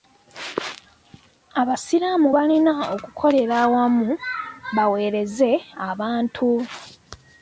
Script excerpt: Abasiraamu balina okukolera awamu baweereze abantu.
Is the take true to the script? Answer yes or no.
yes